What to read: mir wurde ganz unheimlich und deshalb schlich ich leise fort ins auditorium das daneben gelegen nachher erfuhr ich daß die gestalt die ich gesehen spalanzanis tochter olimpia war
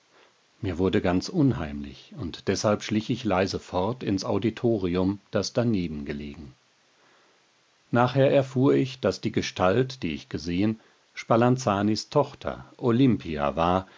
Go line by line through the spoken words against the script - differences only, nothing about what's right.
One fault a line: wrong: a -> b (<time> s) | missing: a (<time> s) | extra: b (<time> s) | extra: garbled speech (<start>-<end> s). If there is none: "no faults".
no faults